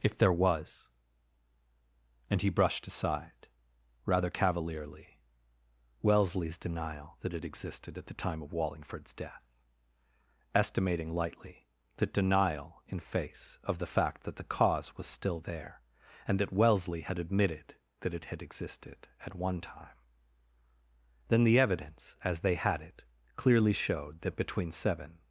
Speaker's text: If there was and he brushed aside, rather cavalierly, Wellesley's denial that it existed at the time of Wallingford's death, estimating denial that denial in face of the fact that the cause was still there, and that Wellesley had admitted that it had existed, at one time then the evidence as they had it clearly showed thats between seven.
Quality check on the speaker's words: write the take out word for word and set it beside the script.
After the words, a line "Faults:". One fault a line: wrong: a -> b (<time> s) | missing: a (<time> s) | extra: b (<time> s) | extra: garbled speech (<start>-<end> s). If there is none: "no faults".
If there was and he brushed aside, rather cavalierly, Wellesley's denial that it existed at the time of Wallingford's death, estimating lightly that denial in face of the fact that the cause was still there, and that Wellesley had admitted that it had existed, at one time then the evidence as they had it clearly showed that between seven.
Faults:
wrong: denial -> lightly (11.1 s)
wrong: thats -> that (24.2 s)